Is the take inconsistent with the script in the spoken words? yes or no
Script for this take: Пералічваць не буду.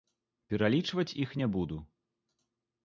yes